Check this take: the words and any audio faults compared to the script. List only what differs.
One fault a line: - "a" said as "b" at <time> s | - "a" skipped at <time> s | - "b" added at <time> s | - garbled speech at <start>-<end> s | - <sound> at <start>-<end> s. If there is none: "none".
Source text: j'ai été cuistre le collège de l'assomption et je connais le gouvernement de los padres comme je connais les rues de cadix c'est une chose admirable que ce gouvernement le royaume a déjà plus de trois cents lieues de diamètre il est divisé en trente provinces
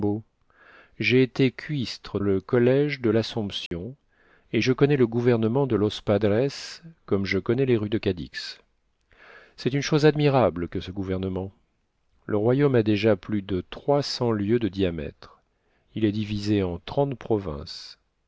- dropout at 3.7-3.7 s